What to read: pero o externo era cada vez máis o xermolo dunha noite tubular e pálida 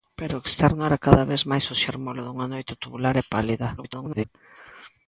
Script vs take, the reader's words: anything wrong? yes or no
yes